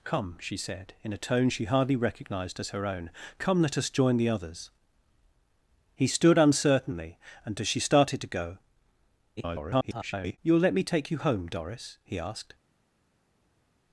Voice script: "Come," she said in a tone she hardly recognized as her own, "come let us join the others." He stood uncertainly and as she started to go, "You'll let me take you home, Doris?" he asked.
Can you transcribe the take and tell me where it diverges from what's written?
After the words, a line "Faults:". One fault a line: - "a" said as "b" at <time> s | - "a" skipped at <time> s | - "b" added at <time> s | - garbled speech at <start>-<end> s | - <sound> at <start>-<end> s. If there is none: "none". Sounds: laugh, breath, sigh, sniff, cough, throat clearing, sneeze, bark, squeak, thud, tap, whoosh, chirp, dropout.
"Come," she said in a tone she hardly recognized as her own, "come let us join the others." He stood uncertainly and as she started to go, [garbled] "You'll let me take you home, Doris?" he asked.
Faults:
- garbled speech at 9.4-10.4 s